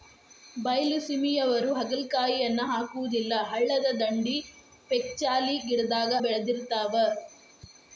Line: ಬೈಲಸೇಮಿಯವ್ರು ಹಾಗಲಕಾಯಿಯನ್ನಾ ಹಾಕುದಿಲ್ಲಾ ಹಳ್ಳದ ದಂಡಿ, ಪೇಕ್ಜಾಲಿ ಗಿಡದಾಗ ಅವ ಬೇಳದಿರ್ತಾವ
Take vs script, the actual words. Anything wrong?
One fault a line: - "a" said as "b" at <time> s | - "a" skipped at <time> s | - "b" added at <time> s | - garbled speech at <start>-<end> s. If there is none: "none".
- "ಅವ" skipped at 6.1 s